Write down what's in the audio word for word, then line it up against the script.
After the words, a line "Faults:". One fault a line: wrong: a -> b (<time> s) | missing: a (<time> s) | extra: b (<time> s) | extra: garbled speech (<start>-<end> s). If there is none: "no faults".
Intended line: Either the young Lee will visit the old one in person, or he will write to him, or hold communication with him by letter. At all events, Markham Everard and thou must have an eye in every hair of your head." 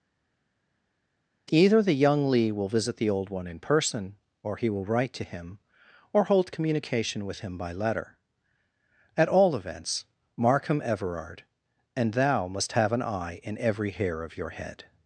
Either the young Lee will visit the old one in person, or he will write to him, or hold communication with him by letter. At all events, Markham Everard and thou must have an eye in every hair of your head."
Faults:
no faults